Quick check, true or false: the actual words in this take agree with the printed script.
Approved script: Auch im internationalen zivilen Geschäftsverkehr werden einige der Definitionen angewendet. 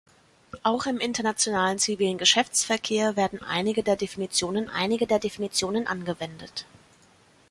false